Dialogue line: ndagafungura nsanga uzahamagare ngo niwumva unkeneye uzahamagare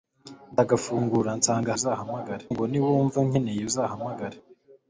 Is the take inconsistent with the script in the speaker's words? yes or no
no